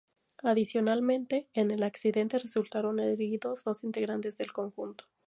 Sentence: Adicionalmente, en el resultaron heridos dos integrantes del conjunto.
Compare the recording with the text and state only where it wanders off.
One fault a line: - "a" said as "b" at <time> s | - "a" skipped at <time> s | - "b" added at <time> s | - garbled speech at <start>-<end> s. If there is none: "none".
- "accidente" added at 1.8 s